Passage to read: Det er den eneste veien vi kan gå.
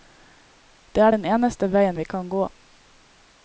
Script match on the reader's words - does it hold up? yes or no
yes